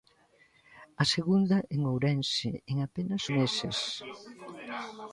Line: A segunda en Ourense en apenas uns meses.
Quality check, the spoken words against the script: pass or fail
fail